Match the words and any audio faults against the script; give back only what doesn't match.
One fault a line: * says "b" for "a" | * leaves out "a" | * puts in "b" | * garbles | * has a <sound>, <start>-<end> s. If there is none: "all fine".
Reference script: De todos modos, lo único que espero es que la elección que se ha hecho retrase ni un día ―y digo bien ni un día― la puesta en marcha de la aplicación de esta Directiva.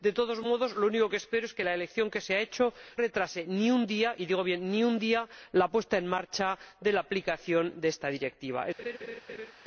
* has a laugh, 8.8-9.5 s